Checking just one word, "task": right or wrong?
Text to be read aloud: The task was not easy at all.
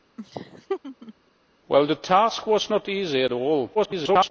right